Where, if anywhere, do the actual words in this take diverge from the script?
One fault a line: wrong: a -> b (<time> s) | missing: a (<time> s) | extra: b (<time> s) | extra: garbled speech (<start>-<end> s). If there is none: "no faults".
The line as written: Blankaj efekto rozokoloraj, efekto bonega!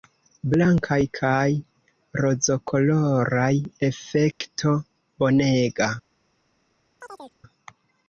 wrong: efekto -> kaj (1.2 s)